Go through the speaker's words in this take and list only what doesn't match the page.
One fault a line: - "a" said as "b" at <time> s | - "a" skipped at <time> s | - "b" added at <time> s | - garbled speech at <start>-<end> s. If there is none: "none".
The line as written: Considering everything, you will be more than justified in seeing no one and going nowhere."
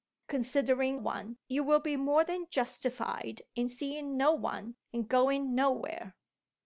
- "everything" said as "one" at 0.9 s